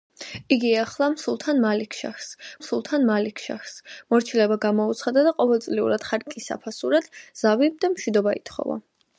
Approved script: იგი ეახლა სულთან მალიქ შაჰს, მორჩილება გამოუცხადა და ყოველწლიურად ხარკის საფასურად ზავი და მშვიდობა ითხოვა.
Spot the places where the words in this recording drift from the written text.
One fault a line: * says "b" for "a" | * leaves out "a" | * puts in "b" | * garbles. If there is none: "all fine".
* puts in "სულთან მალიქ შაჰს"